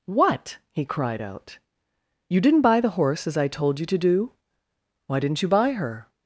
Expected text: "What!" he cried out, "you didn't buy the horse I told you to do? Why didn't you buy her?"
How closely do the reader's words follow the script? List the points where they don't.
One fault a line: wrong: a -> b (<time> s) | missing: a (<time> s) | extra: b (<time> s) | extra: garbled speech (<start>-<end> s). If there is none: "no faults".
extra: as (3.3 s)